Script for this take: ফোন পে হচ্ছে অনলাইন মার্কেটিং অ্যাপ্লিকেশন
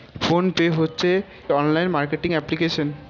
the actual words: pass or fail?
pass